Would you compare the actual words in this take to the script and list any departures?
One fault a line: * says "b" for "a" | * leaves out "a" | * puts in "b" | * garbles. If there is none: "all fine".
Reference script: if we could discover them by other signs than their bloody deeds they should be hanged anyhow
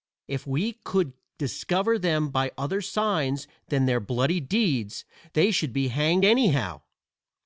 all fine